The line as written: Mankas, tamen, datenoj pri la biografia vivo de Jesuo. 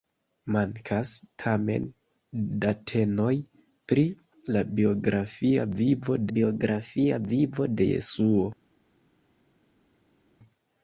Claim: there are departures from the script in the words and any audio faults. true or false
true